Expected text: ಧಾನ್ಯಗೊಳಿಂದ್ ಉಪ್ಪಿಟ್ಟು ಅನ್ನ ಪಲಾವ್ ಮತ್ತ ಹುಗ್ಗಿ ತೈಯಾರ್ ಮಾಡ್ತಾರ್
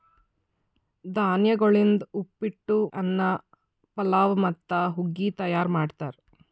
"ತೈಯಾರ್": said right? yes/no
yes